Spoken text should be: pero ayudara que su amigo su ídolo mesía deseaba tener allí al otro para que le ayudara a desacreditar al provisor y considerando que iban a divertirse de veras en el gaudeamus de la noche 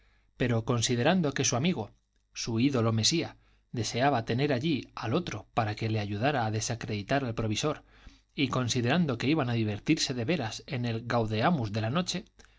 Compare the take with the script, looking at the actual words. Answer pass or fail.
fail